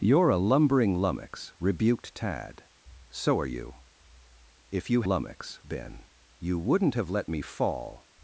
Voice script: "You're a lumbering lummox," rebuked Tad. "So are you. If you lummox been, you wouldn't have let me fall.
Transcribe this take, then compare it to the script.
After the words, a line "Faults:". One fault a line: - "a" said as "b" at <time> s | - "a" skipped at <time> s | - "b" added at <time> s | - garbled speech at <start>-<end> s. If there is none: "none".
"You're a lumbering lummox," rebuked Tad. "So are you. If you lummox been, you wouldn't have let me fall.
Faults:
none